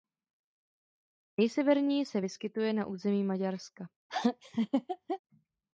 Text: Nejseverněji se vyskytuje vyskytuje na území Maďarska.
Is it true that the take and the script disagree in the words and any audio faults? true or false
true